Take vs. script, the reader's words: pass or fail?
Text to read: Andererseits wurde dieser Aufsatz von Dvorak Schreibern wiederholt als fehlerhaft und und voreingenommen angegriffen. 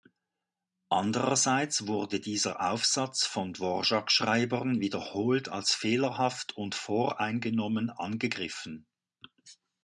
fail